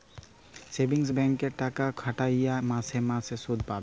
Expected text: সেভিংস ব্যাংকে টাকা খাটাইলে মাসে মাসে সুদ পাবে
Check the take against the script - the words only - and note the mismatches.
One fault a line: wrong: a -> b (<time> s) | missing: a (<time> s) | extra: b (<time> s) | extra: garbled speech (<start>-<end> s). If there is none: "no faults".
no faults